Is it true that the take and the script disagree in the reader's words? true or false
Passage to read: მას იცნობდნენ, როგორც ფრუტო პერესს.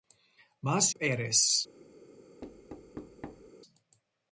true